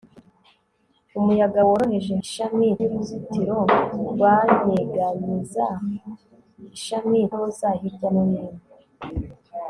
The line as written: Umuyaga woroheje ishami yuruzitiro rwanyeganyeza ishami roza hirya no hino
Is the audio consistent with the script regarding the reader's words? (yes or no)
yes